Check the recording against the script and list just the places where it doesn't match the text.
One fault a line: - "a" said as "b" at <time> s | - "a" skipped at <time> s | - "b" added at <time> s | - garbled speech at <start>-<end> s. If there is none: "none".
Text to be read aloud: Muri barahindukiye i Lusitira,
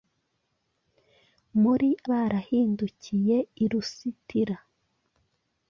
none